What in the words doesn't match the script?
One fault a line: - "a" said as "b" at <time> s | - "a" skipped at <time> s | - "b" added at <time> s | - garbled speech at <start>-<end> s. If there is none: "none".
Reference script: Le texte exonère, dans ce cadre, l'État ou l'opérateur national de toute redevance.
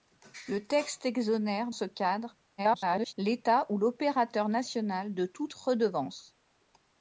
- "dans" skipped at 1.7 s
- garbled speech at 2.6-3.1 s